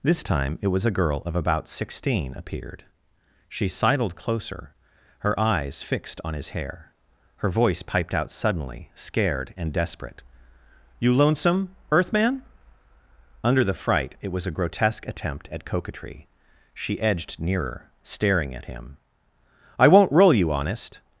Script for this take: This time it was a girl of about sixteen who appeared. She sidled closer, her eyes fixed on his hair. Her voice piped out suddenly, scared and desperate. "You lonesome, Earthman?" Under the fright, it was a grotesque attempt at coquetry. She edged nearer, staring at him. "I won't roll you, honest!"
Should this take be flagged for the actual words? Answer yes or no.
yes